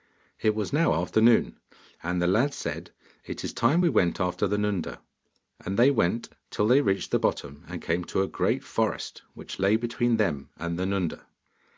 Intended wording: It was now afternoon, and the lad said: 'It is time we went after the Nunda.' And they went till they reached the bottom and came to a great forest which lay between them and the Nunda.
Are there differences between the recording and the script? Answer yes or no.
no